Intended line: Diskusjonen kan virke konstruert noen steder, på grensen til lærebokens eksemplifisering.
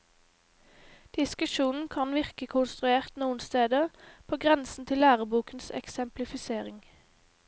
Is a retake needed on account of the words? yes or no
no